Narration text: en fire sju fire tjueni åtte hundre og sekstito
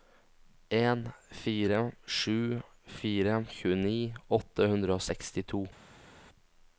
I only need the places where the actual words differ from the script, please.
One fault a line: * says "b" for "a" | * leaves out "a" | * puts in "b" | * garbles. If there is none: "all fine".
all fine